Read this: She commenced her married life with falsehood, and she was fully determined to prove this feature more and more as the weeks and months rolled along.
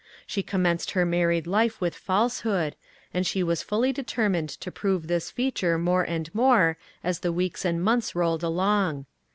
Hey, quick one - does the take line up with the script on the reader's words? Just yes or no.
yes